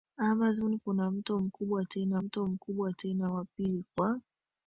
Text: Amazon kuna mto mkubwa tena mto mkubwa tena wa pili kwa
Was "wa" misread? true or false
false